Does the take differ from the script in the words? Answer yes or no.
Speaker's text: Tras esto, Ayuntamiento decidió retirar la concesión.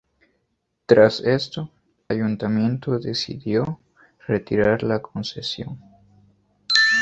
no